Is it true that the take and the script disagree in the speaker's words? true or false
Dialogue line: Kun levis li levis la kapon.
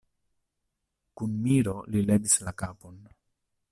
true